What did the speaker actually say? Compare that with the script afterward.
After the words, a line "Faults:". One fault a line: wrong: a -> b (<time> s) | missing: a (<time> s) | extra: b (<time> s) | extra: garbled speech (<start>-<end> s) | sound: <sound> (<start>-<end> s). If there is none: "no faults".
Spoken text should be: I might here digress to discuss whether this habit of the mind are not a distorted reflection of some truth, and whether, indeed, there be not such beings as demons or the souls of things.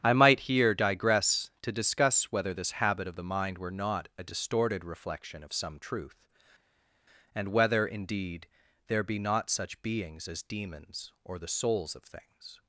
I might here digress to discuss whether this habit of the mind were not a distorted reflection of some truth, and whether, indeed, there be not such beings as demons or the souls of things.
Faults:
wrong: are -> were (3.6 s)